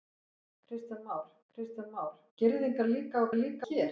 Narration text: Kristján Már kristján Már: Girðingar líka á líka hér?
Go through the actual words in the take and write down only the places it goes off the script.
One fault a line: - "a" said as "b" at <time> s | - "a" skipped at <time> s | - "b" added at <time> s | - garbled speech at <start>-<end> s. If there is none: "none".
none